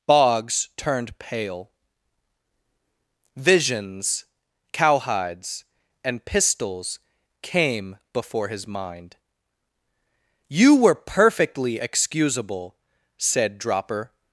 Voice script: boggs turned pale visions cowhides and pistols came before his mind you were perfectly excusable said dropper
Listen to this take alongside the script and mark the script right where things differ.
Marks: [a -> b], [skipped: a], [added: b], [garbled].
boggs turned pale visions cowhides and pistols came before his mind you were perfectly excusable said dropper